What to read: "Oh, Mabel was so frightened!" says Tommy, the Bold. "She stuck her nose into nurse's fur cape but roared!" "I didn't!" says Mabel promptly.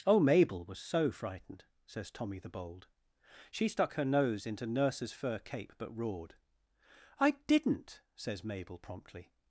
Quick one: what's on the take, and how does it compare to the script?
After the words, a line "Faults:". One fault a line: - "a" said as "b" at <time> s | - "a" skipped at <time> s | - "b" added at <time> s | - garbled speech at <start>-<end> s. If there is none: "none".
"Oh, Mabel was so frightened!" says Tommy, the Bold. "She stuck her nose into nurse's fur cape but roared!" "I didn't!" says Mabel promptly.
Faults:
none